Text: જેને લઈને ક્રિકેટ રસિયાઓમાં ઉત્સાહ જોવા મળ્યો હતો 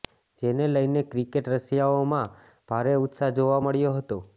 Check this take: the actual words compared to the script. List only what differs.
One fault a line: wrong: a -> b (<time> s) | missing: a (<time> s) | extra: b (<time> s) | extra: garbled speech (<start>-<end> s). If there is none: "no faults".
extra: ભારે (2.7 s)